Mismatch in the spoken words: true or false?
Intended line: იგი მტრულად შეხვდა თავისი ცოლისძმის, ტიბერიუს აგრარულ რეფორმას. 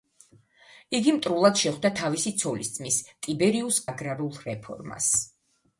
false